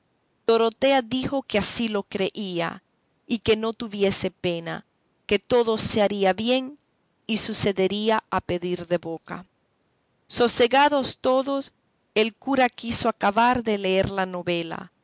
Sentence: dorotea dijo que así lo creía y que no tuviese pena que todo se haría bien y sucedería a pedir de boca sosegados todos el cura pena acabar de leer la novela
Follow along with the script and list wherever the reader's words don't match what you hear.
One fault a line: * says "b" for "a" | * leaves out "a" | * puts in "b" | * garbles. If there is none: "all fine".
* says "quiso" for "pena"